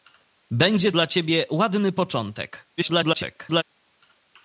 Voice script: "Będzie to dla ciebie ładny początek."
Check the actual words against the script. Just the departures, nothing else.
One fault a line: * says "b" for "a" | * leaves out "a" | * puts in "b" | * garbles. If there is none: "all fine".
* leaves out "to"
* garbles